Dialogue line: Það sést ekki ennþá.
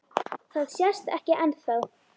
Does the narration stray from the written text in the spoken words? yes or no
no